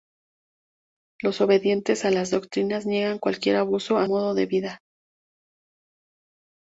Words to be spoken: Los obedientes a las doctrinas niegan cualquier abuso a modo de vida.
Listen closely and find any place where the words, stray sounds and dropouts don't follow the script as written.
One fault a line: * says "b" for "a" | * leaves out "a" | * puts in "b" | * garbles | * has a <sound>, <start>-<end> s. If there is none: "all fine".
all fine